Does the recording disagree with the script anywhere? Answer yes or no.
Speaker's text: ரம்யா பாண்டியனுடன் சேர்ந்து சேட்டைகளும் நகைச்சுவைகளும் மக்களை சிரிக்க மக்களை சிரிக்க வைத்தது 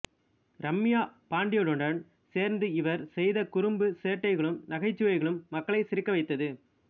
yes